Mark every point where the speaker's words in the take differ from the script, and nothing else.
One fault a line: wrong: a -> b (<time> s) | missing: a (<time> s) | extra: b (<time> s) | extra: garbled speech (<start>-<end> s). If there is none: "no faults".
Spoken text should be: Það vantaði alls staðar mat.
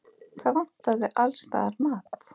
no faults